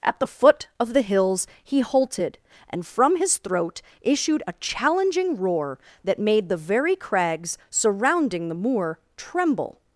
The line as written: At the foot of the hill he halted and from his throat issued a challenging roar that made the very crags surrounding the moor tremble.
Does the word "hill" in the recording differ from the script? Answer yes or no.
yes